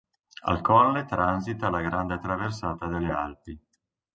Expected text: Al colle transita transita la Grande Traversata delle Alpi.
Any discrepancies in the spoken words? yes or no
yes